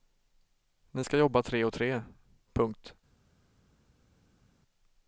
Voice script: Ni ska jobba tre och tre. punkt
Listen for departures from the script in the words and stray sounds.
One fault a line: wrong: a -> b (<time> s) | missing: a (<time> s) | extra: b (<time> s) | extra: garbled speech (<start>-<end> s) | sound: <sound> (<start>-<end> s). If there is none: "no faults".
no faults